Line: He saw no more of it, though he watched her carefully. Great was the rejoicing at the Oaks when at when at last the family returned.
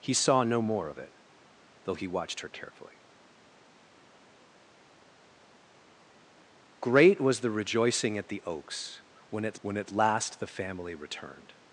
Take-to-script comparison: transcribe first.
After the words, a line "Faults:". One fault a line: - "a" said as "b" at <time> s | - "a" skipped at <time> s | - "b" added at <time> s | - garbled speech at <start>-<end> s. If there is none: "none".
He saw no more of it, though he watched her carefully. Great was the rejoicing at the Oaks when at when at last the family returned.
Faults:
none